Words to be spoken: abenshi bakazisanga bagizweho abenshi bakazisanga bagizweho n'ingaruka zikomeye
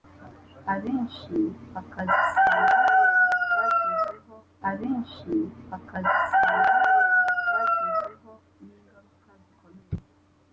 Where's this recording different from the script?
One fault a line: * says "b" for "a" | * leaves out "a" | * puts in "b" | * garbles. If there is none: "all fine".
all fine